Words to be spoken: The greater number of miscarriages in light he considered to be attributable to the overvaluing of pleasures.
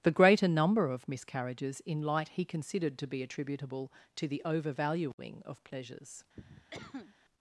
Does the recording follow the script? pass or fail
pass